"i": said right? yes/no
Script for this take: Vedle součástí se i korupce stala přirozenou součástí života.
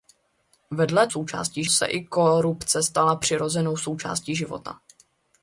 yes